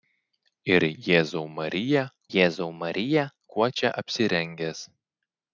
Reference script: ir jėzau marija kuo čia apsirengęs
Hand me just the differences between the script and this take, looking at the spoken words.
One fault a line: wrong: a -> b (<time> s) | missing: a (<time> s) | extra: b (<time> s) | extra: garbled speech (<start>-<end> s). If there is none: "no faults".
extra: jėzau marija (2.4 s)